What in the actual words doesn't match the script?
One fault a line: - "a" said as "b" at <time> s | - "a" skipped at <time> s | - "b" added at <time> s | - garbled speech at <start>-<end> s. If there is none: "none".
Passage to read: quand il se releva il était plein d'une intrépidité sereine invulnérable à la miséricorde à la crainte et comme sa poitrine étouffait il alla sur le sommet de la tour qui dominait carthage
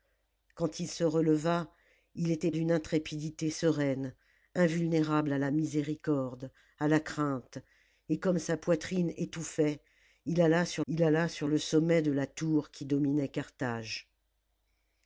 - "plein" skipped at 2.5 s
- "il alla sur" added at 10.9 s